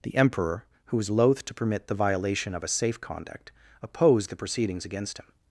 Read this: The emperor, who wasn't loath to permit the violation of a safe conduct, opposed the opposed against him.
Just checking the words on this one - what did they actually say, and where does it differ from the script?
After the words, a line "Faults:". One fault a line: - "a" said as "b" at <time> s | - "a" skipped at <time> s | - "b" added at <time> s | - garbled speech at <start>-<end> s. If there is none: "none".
The emperor, who was loath to permit the violation of a safe conduct, opposed the proceedings against him.
Faults:
- "wasn't" said as "was" at 1.0 s
- "opposed" said as "proceedings" at 4.3 s